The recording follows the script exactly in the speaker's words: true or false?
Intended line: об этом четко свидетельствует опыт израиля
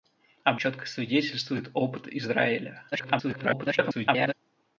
false